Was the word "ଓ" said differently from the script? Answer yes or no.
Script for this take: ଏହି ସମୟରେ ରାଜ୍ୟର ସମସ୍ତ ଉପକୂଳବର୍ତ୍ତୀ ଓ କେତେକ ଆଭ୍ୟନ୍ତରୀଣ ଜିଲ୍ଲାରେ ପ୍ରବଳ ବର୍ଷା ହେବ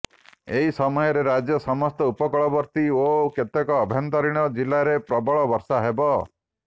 no